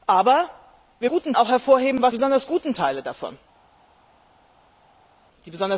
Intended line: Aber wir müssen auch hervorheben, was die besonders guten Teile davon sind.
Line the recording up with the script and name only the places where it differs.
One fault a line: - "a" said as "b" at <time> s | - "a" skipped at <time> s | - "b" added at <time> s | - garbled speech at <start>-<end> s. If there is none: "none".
- "müssen" said as "guten" at 1.1 s
- "die" skipped at 2.1 s